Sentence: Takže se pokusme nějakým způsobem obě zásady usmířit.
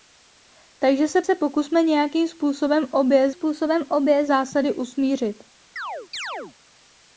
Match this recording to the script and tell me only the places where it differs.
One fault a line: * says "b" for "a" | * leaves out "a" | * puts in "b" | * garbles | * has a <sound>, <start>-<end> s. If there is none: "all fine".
* puts in "se"
* puts in "způsobem obě"
* has a chirp, 5.8-6.6 s